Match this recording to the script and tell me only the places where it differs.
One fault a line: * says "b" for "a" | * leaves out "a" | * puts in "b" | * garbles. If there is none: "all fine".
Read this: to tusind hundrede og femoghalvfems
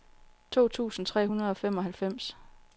* puts in "tre"